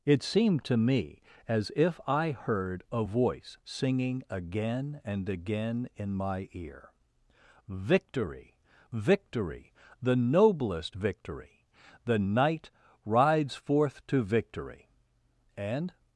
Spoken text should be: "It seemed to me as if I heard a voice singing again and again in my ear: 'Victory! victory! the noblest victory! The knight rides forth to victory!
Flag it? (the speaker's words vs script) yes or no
yes